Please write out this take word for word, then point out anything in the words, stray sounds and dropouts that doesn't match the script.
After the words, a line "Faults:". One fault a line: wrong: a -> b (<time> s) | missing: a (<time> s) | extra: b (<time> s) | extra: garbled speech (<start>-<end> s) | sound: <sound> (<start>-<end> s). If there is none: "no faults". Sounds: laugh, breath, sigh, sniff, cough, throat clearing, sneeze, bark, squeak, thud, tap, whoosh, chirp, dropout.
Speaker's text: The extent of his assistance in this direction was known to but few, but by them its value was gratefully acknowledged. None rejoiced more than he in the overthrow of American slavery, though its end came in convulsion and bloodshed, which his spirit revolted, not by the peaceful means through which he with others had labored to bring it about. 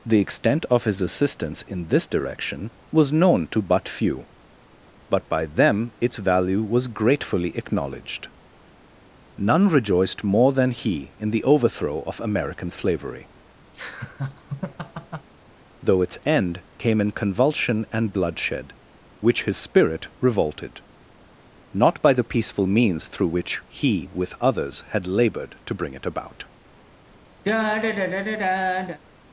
The extent of his assistance in this direction was known to but few, but by them its value was gratefully acknowledged. None rejoiced more than he in the overthrow of American slavery, though its end came in convulsion and bloodshed, which his spirit revolted, not by the peaceful means through which he with others had labored to bring it about.
Faults:
sound: laugh (13.7-15.3 s)
sound: sigh (27.4-29.0 s)